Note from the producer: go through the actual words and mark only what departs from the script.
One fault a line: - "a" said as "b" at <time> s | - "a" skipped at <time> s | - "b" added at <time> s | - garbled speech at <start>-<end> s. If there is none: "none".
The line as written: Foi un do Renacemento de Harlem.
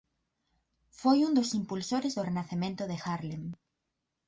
- "dos impulsores" added at 1.4 s